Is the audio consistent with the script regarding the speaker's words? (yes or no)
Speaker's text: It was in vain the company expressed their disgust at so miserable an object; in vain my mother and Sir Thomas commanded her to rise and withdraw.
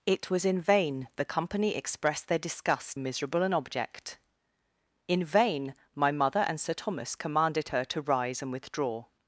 no